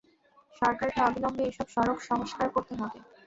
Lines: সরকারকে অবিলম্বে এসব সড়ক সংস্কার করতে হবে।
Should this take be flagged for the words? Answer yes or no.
no